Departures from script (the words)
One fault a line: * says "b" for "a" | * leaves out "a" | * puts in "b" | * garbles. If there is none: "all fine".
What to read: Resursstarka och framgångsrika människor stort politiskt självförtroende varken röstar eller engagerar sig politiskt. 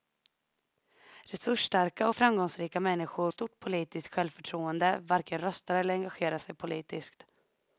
all fine